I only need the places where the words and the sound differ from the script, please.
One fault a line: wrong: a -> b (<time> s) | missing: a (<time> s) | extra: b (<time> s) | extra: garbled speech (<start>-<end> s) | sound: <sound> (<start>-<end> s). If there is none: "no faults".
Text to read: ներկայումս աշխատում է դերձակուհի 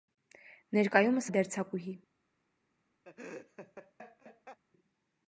missing: աշխատում (1.3 s)
sound: laugh (3.0-4.6 s)